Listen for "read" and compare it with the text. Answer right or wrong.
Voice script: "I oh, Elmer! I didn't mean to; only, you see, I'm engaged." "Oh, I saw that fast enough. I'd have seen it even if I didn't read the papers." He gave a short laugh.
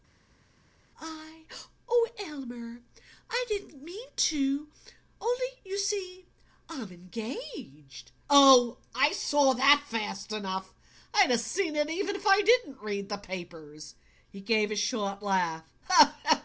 right